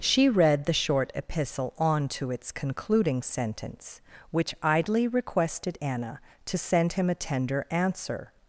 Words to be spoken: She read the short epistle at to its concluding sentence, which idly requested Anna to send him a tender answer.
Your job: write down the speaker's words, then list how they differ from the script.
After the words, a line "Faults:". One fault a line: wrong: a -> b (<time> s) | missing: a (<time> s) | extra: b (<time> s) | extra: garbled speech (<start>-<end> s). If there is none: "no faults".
She read the short epistle on to its concluding sentence, which idly requested Anna to send him a tender answer.
Faults:
wrong: at -> on (1.8 s)